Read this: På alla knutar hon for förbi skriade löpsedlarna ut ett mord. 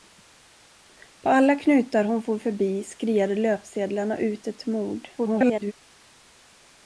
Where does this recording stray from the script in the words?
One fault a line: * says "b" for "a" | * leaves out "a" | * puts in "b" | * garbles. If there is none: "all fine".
* garbles